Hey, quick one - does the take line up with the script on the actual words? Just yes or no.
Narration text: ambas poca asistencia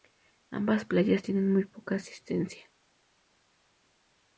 no